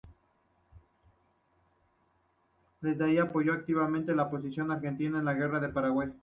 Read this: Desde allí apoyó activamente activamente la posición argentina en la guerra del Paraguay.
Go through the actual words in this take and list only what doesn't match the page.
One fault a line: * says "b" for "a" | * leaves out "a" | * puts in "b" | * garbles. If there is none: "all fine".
* leaves out "activamente"